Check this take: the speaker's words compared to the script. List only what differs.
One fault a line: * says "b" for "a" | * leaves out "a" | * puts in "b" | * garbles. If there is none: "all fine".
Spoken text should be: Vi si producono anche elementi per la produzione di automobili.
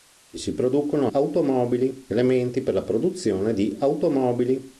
* says "automobili" for "anche"